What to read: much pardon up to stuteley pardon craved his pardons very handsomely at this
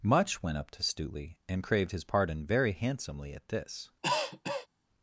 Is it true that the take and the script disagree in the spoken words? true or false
true